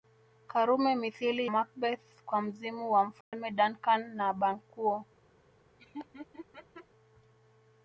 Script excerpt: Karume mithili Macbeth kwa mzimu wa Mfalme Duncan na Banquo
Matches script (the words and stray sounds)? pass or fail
fail